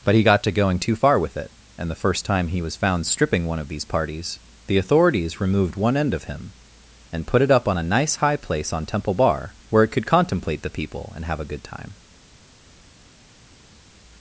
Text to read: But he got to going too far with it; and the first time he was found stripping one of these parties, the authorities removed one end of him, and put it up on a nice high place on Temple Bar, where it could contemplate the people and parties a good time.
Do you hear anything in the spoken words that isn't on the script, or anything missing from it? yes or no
yes